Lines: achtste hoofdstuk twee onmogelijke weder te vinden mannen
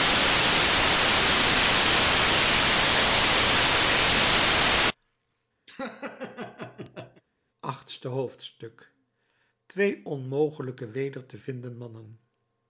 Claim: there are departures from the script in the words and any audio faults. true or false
true